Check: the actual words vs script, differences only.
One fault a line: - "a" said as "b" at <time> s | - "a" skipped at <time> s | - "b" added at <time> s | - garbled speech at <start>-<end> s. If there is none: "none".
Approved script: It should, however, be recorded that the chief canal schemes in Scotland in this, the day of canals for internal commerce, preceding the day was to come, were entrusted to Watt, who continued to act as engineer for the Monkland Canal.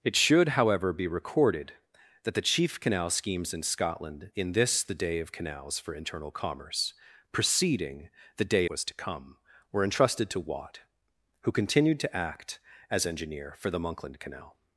none